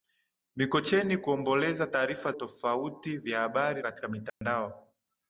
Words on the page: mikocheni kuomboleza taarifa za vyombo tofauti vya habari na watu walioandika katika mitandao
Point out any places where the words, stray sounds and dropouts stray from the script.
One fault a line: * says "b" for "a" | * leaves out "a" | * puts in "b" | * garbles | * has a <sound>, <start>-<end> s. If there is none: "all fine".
* leaves out "za vyombo"
* leaves out "na watu walioandika"
* has a dropout, 4.3-4.4 s